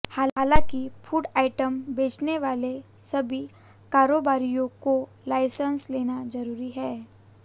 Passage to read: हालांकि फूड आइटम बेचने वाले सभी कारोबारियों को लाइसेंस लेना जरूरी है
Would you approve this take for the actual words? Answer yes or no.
yes